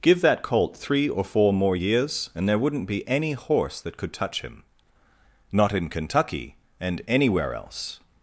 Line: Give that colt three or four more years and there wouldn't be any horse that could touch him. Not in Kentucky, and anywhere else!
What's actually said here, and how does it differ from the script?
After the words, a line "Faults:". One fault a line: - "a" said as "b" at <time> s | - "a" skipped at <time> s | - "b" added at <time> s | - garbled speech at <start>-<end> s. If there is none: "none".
Give that colt three or four more years and there wouldn't be any horse that could touch him. Not in Kentucky, and anywhere else!
Faults:
none